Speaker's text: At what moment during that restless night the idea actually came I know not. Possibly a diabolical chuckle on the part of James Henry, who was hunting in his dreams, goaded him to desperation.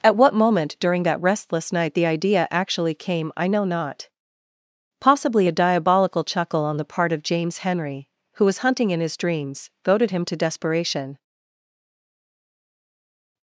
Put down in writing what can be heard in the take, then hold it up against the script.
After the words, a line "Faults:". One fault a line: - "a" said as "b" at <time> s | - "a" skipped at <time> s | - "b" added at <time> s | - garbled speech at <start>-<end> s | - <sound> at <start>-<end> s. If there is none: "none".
At what moment during that restless night the idea actually came I know not. Possibly a diabolical chuckle on the part of James Henry, who was hunting in his dreams, goaded him to desperation.
Faults:
none